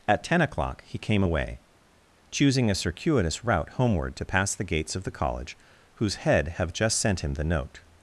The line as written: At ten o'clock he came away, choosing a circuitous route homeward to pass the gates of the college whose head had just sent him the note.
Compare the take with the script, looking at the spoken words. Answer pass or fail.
fail